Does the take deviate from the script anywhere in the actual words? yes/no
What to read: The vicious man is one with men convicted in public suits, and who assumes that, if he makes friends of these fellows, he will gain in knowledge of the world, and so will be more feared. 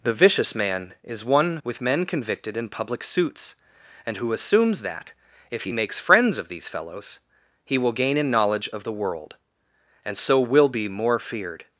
no